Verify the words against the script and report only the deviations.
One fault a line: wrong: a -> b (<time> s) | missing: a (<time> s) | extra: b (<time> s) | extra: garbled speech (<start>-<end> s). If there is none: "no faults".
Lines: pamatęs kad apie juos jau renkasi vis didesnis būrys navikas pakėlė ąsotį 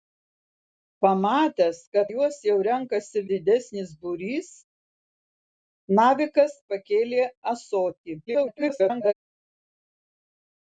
missing: apie (2.1 s)
missing: vis (3.2 s)
extra: garbled speech (8.3-9.1 s)